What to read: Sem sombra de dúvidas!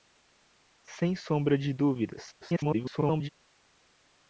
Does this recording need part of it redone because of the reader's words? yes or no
yes